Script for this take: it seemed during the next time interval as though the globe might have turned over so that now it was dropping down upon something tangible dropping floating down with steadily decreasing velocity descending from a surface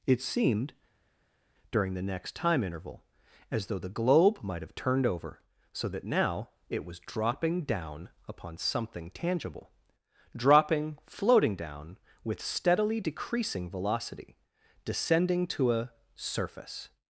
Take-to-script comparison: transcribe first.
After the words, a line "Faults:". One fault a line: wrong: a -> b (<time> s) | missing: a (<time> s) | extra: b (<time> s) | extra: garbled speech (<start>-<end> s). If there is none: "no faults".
it seemed during the next time interval as though the globe might have turned over so that now it was dropping down upon something tangible dropping floating down with steadily decreasing velocity descending to a surface
Faults:
wrong: from -> to (15.5 s)